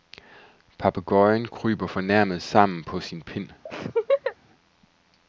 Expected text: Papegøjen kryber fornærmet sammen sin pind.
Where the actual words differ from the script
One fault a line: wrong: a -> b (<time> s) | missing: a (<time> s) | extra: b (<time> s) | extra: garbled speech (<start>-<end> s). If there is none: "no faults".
extra: på (2.8 s)